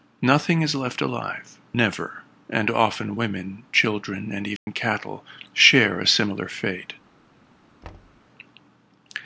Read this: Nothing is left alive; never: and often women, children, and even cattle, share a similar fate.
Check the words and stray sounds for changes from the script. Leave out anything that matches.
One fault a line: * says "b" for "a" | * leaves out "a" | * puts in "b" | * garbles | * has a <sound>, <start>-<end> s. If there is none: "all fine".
* has a dropout, 4.6-4.7 s
* has a thud, 7.8-8.2 s